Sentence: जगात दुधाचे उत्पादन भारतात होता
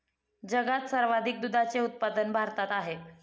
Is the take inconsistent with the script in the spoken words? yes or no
yes